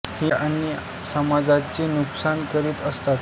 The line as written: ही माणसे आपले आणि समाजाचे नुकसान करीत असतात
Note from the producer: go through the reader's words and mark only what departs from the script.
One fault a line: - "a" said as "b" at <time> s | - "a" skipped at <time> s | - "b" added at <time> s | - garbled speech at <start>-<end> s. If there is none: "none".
- "माणसे आपले" skipped at 0.3 s